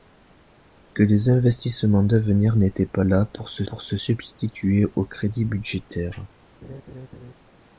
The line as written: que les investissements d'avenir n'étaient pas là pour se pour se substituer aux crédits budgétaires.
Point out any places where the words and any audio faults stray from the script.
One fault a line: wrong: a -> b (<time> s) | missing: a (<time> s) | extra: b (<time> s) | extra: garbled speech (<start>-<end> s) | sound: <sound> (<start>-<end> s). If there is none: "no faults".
sound: laugh (6.6-7.3 s)